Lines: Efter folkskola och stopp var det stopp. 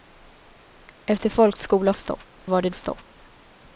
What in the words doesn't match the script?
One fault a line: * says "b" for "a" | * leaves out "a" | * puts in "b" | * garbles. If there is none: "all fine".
all fine